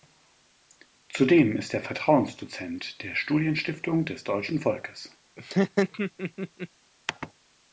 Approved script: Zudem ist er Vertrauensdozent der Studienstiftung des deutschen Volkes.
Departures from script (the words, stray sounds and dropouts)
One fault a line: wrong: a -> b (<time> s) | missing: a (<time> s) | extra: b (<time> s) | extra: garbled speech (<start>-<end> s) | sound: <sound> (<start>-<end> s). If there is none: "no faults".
sound: laugh (5.4-6.7 s)